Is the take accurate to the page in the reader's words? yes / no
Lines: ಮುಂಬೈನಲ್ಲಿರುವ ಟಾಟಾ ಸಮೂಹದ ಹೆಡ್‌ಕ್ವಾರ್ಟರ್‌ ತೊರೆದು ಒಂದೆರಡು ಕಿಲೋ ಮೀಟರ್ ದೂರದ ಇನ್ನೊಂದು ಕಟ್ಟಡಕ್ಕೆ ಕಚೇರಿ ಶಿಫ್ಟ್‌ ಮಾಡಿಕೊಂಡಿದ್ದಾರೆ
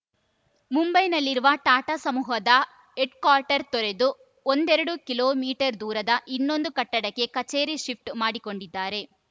yes